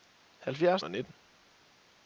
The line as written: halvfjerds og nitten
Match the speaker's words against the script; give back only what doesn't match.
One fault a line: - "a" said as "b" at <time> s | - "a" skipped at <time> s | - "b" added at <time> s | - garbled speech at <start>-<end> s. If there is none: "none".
none